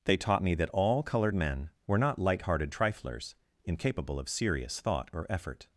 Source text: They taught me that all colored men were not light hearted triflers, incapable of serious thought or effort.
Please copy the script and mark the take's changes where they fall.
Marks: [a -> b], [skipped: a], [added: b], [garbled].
They taught me that all colored men were not light hearted triflers, incapable of serious thought or effort.